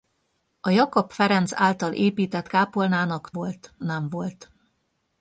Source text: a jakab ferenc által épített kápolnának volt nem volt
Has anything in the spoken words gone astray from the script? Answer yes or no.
no